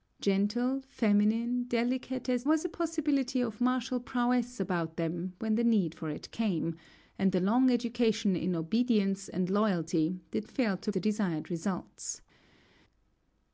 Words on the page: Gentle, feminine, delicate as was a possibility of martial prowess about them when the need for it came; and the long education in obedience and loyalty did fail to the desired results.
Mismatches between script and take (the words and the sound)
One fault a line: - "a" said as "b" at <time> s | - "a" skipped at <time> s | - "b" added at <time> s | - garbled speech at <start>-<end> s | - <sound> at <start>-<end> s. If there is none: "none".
none